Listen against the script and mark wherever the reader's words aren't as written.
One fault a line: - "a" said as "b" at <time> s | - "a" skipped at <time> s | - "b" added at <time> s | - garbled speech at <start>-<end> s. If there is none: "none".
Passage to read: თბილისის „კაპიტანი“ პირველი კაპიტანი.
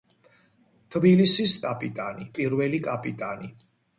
none